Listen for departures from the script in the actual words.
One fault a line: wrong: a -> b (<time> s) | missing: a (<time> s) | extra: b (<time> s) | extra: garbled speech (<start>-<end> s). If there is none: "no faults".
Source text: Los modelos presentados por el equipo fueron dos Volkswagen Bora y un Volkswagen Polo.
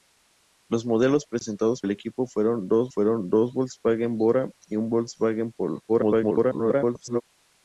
missing: por (1.8 s)
extra: fueron dos (2.9 s)
extra: garbled speech (5.9-7.2 s)